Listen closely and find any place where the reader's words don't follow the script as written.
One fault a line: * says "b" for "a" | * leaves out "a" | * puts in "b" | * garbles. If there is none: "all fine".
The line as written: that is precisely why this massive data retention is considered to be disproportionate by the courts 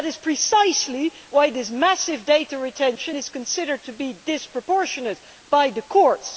all fine